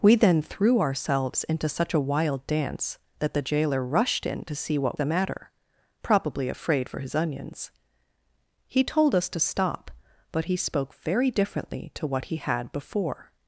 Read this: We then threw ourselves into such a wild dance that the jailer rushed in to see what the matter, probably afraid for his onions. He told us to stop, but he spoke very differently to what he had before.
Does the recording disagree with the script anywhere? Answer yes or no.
no